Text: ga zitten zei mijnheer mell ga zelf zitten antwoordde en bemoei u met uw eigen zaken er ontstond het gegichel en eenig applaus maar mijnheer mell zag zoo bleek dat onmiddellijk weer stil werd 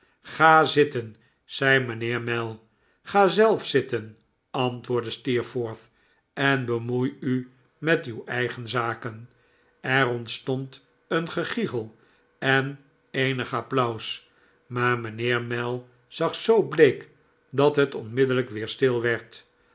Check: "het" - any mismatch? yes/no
yes